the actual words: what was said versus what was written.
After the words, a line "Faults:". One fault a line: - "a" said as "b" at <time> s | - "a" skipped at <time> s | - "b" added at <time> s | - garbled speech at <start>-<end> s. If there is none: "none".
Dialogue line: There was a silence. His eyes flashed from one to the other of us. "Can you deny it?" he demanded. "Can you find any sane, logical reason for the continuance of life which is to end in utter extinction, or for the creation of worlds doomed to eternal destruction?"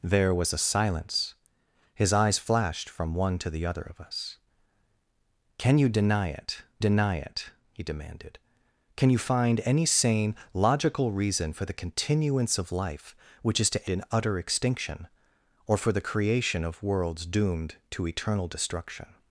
There was a silence. His eyes flashed from one to the other of us. "Can you deny it deny it?" he demanded. "Can you find any sane, logical reason for the continuance of life which is to in utter extinction, or for the creation of worlds doomed to eternal destruction?"
Faults:
- "deny it" added at 6.8 s
- "end" skipped at 13.9 s